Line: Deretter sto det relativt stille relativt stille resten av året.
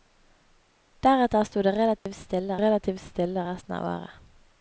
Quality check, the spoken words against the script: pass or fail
pass